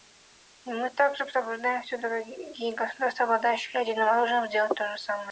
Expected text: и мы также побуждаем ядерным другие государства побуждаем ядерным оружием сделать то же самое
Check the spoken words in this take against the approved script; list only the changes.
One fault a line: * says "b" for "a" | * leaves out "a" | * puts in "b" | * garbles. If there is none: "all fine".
* says "все" for "ядерным"
* says "обладающие" for "побуждаем"